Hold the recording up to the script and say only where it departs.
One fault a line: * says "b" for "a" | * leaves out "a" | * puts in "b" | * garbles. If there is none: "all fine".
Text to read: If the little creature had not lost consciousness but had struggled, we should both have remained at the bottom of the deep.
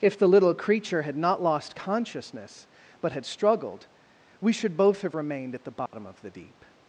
all fine